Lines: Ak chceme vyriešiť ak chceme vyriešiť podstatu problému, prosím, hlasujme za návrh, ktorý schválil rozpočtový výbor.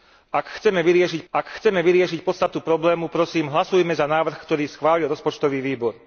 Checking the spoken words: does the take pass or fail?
pass